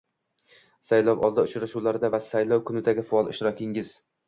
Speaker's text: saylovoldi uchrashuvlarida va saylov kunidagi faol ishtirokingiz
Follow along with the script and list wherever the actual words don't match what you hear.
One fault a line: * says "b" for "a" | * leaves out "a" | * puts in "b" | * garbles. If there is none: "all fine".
all fine